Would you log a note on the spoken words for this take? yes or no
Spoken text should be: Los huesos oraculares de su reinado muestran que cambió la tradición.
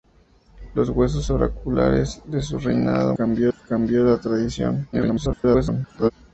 yes